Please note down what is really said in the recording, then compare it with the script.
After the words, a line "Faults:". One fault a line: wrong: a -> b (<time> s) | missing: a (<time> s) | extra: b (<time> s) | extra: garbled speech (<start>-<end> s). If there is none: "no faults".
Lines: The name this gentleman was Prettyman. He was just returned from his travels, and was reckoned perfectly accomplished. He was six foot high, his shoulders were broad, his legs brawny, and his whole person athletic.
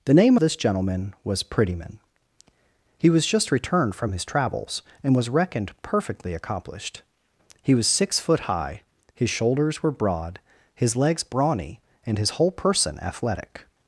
The name this gentleman was Prettyman. He was just returned from his travels, and was reckoned perfectly accomplished. He was six foot high, his shoulders were broad, his legs brawny, and his whole person athletic.
Faults:
no faults